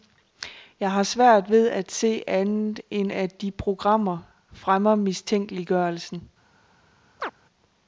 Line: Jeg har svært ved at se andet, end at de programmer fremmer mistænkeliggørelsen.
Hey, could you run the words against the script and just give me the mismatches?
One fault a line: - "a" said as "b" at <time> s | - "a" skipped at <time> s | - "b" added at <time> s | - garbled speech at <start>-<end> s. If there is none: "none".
none